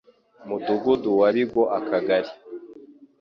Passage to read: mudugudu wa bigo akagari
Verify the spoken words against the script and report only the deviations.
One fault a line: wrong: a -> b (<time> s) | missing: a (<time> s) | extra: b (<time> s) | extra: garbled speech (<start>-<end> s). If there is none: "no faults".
no faults